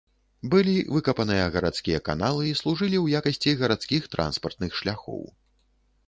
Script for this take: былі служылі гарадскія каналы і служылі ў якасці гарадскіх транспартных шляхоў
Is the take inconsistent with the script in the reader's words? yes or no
yes